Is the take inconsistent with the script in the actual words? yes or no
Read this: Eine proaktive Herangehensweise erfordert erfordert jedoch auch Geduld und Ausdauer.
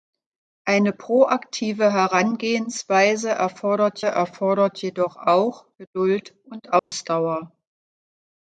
no